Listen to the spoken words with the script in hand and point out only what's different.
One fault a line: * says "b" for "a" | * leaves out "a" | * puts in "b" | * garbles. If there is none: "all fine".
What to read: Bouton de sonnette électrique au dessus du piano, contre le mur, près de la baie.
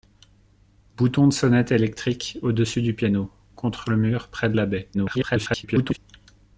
* garbles